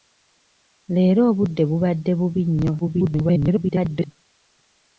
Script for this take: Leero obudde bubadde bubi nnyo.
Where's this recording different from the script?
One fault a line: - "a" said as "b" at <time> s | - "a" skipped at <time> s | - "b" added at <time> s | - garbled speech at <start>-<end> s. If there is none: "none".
- garbled speech at 2.8-4.1 s